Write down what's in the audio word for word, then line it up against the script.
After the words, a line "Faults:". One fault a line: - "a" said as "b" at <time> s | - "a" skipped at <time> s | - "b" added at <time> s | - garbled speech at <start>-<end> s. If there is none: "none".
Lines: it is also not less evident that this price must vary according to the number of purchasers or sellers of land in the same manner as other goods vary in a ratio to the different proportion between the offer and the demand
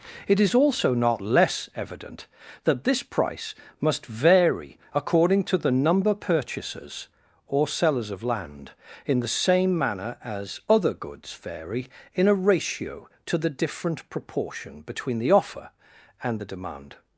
it is also not less evident that this price must vary according to the number purchasers or sellers of land in the same manner as other goods vary in a ratio to the different proportion between the offer and the demand
Faults:
- "of" skipped at 6.1 s